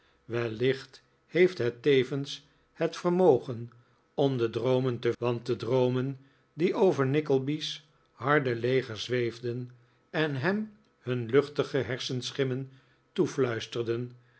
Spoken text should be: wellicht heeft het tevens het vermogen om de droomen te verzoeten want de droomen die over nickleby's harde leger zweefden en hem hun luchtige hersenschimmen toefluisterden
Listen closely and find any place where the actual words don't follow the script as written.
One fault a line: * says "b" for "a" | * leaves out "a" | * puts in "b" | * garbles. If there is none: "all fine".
* leaves out "verzoeten"